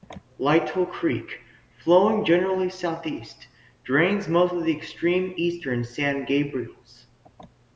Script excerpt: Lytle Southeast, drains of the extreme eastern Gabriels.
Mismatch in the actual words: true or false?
true